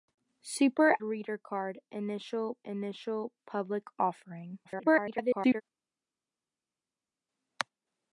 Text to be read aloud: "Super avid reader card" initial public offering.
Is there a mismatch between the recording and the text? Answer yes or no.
yes